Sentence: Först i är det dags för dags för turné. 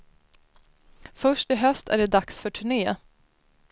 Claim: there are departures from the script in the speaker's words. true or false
true